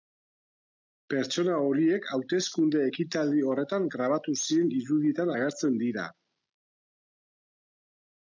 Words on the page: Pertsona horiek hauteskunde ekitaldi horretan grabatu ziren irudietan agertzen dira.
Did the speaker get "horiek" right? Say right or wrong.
right